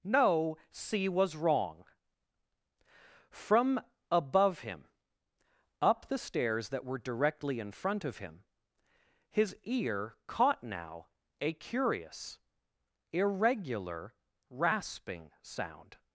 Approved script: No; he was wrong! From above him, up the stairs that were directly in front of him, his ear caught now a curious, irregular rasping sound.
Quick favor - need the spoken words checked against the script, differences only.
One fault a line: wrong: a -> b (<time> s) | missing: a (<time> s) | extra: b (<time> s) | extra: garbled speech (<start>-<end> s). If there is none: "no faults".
wrong: he -> c (0.7 s)